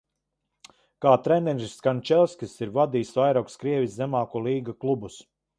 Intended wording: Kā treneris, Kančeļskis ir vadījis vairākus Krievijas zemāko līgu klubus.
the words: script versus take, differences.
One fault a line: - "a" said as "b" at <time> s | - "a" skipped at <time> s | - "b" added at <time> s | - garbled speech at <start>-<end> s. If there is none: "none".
none